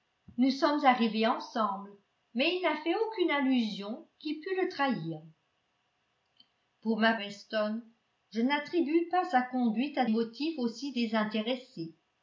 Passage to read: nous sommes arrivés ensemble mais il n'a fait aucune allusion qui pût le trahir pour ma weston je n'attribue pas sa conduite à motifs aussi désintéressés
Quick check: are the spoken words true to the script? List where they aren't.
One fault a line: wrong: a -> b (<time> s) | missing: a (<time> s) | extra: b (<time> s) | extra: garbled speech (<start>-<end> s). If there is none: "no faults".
no faults